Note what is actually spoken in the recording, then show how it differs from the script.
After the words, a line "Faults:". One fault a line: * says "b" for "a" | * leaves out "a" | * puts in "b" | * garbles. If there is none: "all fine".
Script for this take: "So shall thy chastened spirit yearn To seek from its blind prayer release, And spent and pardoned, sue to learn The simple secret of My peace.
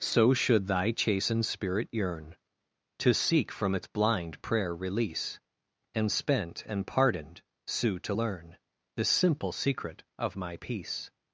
"So should thy chastened spirit yearn To seek from its blind prayer release, And spent and pardoned, sue to learn The simple secret of My peace.
Faults:
* says "should" for "shall"